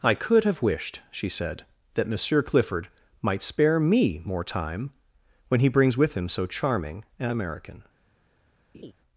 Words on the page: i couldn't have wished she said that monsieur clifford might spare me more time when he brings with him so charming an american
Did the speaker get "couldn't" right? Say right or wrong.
wrong